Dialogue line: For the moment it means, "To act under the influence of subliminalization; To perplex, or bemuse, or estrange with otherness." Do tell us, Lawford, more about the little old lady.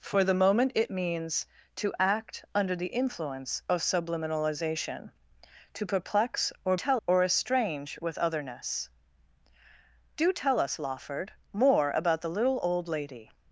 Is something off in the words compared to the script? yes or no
yes